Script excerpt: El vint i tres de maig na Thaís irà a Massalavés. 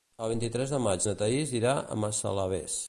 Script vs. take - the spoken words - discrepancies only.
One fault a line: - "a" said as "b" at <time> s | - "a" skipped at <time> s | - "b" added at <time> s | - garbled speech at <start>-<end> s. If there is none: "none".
none